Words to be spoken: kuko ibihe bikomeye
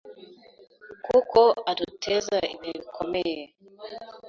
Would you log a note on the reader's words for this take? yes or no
yes